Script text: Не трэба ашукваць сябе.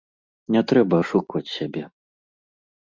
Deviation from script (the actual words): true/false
false